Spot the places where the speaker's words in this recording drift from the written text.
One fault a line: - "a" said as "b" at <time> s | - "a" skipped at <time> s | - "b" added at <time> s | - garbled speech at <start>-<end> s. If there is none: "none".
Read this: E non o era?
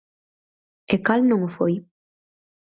- "cal" added at 1.1 s
- "era" said as "foi" at 1.6 s